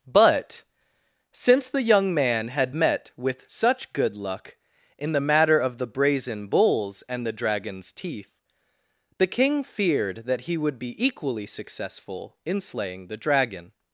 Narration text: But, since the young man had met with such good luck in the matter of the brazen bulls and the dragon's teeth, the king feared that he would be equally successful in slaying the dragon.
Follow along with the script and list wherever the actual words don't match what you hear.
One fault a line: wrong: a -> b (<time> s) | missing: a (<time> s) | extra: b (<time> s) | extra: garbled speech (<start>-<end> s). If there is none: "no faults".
no faults